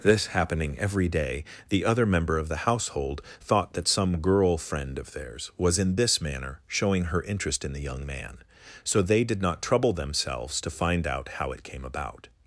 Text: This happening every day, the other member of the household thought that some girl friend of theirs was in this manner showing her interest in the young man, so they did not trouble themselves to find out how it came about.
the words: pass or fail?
pass